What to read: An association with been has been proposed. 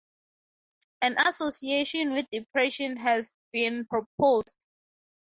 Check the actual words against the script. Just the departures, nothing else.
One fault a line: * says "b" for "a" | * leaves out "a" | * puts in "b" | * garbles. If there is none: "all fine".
* says "depression" for "been"